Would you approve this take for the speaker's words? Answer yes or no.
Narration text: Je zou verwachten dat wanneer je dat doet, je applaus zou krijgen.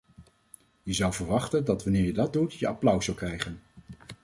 yes